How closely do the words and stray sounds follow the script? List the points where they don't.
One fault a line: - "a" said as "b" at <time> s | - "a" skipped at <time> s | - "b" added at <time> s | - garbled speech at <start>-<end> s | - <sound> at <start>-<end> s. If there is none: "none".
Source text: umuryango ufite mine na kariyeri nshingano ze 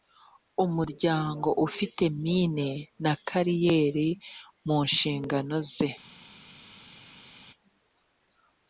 - "mu" added at 4.7 s